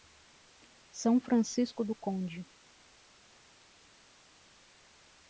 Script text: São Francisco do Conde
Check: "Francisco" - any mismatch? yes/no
no